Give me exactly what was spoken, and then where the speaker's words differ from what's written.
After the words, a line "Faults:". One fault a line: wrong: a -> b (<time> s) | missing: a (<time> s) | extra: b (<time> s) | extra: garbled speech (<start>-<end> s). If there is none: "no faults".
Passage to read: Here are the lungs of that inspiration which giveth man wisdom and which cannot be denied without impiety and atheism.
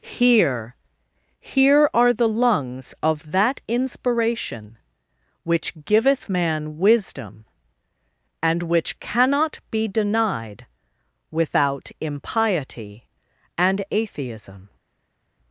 Here here are the lungs of that inspiration which giveth man wisdom and which cannot be denied without impiety and atheism.
Faults:
extra: here (1.4 s)